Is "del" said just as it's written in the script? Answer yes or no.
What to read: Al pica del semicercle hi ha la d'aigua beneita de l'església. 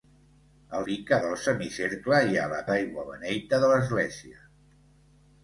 yes